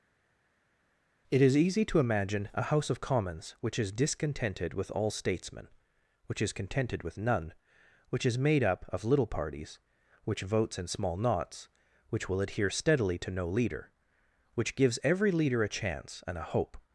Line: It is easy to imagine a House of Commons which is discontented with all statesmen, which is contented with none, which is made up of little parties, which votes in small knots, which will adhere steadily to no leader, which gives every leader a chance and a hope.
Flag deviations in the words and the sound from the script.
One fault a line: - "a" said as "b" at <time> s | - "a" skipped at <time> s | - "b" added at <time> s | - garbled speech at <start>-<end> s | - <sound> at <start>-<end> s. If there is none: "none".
none